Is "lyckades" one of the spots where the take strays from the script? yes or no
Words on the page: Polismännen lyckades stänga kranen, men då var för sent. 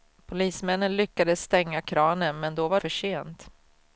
no